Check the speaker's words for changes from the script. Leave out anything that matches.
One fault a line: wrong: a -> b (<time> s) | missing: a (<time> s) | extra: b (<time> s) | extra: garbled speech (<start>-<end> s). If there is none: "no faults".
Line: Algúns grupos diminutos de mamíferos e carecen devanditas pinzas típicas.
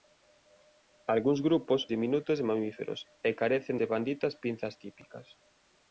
no faults